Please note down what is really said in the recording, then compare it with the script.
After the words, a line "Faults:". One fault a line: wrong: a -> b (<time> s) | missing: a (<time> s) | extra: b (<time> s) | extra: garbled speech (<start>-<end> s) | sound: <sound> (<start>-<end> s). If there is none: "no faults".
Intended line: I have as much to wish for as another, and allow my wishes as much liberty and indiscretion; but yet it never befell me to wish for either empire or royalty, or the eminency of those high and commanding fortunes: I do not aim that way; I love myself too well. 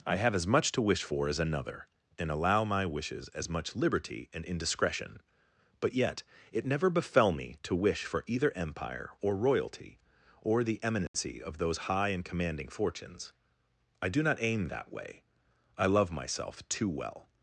I have as much to wish for as another, and allow my wishes as much liberty and indiscretion; but yet it never befell me to wish for either empire or royalty, or the eminency of those high and commanding fortunes: I do not aim that way; I love myself too well.
Faults:
sound: dropout (11.1-11.1 s)